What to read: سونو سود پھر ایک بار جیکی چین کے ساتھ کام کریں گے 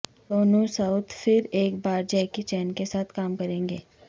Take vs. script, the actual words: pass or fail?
pass